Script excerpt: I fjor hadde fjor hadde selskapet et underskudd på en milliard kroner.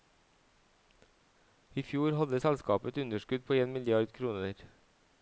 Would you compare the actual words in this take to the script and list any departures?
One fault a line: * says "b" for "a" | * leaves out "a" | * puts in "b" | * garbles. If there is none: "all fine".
* leaves out "fjor hadde"